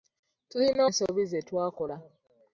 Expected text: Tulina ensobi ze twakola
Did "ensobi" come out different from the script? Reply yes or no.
no